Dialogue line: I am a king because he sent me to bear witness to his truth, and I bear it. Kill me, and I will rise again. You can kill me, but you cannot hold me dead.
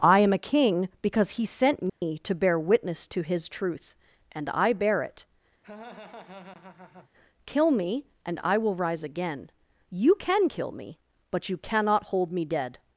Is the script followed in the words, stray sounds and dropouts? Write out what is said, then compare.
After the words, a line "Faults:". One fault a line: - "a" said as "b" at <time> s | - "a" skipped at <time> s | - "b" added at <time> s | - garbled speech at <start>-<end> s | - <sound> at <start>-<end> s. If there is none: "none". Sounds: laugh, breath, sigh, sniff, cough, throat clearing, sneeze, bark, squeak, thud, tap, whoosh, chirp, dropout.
I am a king because he sent me to bear witness to his truth, and I bear it. Kill me, and I will rise again. You can kill me, but you cannot hold me dead.
Faults:
- dropout at 1.9-2.0 s
- laugh at 5.6-7.1 s